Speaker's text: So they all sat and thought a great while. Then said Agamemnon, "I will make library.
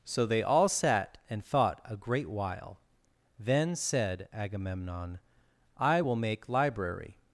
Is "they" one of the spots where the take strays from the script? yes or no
no